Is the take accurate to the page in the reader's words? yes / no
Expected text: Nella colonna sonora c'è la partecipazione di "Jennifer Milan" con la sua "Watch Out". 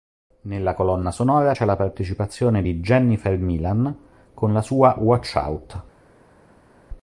yes